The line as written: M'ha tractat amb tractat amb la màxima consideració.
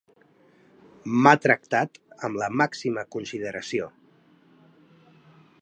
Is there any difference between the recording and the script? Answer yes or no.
yes